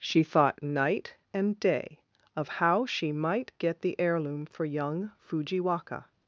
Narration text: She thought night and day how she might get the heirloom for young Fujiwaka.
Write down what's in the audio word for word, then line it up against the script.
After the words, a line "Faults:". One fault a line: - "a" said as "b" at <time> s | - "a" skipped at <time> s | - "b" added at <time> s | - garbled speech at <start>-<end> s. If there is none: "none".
She thought night and day of how she might get the heirloom for young Fujiwaka.
Faults:
- "of" added at 2.4 s